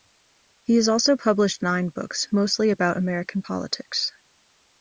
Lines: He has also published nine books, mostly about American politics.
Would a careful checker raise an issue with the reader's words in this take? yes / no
no